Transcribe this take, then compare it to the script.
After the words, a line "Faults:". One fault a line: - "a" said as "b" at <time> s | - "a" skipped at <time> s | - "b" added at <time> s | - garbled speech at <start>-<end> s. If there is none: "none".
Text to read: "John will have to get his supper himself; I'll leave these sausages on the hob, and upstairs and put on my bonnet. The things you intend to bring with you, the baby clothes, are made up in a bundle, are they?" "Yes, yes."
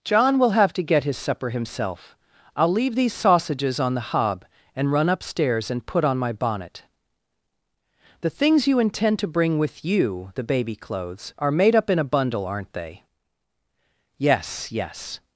"John will have to get his supper himself; I'll leave these sausages on the hob, and run upstairs and put on my bonnet. The things you intend to bring with you, the baby clothes, are made up in a bundle, aren't they?" "Yes, yes."
Faults:
- "run" added at 4.9 s
- "are" said as "aren't" at 12.5 s